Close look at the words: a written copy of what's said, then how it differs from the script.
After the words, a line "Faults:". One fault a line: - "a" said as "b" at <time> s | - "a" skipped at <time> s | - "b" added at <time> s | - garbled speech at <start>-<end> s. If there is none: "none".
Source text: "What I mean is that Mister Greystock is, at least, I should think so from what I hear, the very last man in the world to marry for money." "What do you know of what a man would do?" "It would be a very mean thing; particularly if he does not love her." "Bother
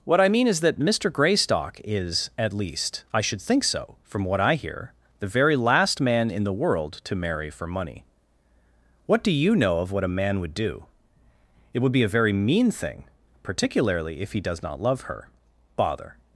"What I mean is that Mister Greystock is, at least, I should think so from what I hear, the very last man in the world to marry for money." "What do you know of what a man would do?" "It would be a very mean thing; particularly if he does not love her." "Bother
Faults:
none